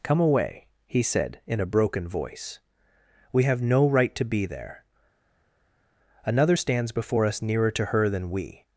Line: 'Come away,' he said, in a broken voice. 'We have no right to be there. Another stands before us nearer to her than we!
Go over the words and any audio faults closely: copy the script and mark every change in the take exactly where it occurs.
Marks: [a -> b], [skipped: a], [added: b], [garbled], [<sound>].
'Come away,' he said, in a broken voice. 'We have no right to be there. Another stands before us nearer to her than we!